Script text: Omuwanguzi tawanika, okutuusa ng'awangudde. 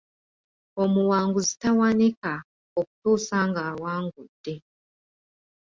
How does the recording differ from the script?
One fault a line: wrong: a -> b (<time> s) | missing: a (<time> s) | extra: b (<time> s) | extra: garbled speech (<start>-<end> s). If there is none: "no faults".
no faults